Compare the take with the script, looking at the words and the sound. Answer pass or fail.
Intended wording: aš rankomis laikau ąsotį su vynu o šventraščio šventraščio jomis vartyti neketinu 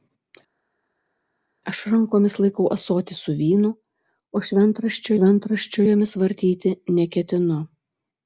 pass